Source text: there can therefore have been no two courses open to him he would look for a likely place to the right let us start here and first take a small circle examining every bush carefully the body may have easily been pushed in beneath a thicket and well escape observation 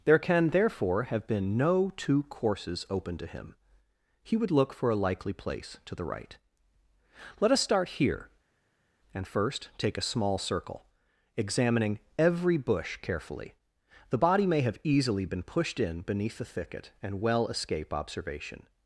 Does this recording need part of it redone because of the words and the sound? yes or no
yes